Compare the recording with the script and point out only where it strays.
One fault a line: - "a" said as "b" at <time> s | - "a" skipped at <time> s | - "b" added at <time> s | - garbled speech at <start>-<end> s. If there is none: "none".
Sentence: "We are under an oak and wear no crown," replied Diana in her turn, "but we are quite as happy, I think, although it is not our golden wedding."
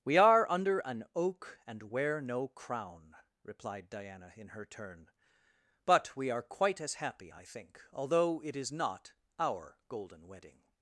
none